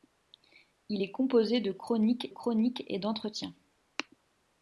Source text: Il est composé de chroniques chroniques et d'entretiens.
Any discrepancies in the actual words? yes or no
no